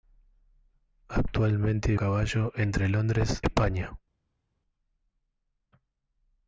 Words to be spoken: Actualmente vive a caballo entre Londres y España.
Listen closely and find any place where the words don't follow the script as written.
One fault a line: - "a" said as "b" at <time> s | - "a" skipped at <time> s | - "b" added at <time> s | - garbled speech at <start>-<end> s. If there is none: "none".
- "vive" skipped at 1.9 s
- "y" skipped at 3.4 s